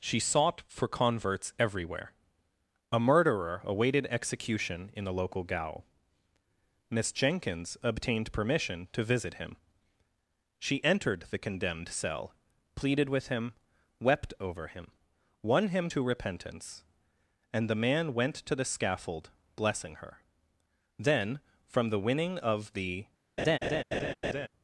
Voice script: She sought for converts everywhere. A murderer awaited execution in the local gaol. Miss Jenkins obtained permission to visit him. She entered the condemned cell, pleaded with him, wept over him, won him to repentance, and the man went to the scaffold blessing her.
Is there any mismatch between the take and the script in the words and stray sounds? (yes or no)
yes